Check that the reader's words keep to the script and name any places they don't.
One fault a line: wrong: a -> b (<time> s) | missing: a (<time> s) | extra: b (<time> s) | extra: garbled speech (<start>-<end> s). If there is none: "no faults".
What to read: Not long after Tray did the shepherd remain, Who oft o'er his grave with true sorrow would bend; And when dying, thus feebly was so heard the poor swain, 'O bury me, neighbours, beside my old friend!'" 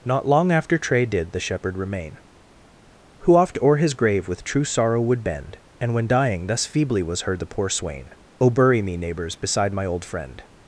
missing: so (7.2 s)